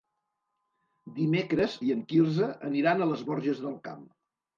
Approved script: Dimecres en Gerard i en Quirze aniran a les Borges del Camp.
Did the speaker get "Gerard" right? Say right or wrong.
wrong